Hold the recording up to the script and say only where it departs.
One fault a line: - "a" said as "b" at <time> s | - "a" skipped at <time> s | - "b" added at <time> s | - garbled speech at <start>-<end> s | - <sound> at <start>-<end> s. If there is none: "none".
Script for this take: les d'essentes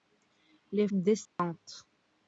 - dropout at 1.3-1.4 s